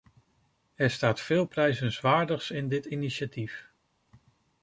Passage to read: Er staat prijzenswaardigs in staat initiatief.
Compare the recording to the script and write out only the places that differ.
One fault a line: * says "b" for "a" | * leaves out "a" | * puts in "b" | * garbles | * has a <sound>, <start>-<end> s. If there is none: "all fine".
* puts in "veel"
* says "dit" for "staat"